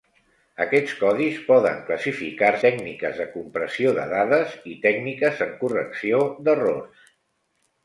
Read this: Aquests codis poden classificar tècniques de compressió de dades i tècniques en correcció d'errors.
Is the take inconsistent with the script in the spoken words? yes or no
no